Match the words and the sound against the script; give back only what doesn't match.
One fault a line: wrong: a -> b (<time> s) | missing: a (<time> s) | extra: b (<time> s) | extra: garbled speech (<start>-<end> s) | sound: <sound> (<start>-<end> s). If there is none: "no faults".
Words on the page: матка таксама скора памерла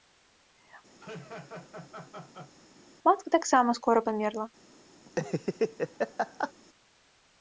sound: laugh (1.0-2.5 s)
sound: laugh (5.1-6.5 s)